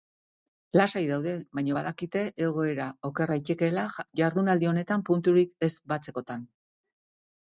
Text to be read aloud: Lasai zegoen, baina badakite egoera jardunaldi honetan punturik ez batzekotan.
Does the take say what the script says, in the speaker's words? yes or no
no